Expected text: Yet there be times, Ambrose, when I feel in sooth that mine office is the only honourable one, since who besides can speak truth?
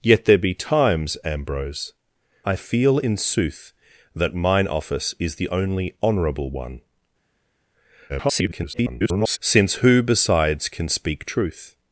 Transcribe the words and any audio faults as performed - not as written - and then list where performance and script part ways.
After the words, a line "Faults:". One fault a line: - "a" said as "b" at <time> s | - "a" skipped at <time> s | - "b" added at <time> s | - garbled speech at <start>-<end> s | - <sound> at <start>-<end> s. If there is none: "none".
Yet there be times, Ambrose, I feel in sooth that mine office is the only honourable one, [garbled] since who besides can speak truth?
Faults:
- "when" skipped at 1.9 s
- garbled speech at 8.1-9.4 s